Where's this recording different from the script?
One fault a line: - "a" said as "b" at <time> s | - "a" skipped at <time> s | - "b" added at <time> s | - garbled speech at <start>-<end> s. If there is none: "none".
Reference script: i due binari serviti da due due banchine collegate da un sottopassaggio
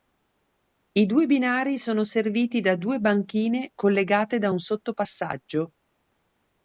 - "sono" added at 1.8 s
- "due" skipped at 3.0 s